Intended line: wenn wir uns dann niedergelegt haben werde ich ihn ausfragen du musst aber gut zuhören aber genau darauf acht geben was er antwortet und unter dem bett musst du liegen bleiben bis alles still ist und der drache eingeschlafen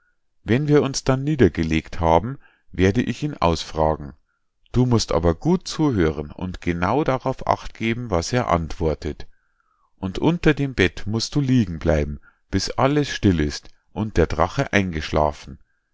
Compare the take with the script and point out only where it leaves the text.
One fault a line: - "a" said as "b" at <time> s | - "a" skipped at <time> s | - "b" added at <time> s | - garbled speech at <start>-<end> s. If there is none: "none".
- "aber" said as "und" at 6.3 s